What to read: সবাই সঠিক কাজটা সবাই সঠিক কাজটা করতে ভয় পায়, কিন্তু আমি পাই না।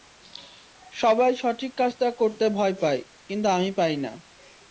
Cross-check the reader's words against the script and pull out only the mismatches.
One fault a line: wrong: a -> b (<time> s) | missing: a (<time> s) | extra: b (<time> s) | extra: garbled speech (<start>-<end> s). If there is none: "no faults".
missing: সবাই সঠিক কাজটা (2.1 s)